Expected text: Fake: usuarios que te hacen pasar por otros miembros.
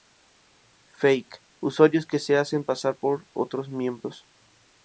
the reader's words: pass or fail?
fail